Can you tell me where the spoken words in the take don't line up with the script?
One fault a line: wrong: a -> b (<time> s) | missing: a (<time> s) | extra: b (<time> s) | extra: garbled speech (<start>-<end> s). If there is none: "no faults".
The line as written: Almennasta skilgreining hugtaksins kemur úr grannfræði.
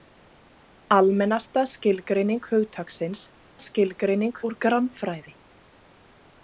wrong: kemur -> skilgreining (3.7 s)